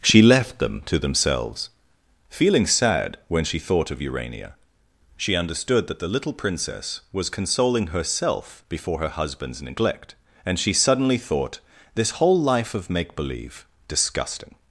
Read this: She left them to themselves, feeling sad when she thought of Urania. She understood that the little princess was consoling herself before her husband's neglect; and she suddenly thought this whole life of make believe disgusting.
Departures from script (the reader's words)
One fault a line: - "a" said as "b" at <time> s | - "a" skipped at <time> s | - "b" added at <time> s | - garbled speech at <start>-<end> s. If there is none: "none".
none